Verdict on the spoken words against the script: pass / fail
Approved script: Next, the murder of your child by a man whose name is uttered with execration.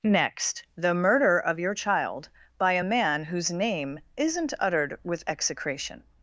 fail